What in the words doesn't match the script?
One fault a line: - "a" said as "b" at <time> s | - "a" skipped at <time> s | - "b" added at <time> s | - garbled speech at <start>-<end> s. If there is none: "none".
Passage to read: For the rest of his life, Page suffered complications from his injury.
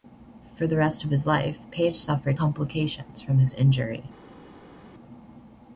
none